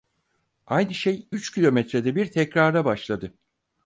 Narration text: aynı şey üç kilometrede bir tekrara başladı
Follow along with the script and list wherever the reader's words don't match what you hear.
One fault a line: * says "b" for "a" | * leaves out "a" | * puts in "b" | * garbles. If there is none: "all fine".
all fine